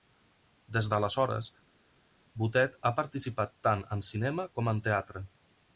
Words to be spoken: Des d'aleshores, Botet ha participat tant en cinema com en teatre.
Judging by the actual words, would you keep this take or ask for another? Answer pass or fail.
pass